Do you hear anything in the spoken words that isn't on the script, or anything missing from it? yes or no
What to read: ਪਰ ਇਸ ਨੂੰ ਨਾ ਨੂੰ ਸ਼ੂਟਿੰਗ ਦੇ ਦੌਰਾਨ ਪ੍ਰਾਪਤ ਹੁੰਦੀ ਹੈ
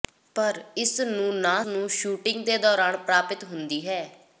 no